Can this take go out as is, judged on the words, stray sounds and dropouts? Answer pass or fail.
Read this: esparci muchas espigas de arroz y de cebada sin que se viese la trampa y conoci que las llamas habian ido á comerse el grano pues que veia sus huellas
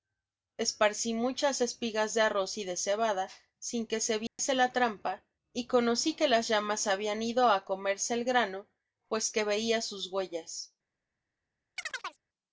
fail